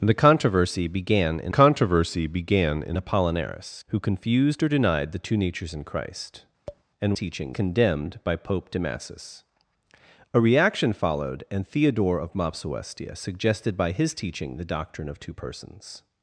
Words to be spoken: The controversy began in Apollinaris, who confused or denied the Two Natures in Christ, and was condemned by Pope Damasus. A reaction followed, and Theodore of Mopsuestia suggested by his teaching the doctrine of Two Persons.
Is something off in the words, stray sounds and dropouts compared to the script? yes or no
yes